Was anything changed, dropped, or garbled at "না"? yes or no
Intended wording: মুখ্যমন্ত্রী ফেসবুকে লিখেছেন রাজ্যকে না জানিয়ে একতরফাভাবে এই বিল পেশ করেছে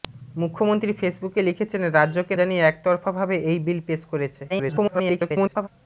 yes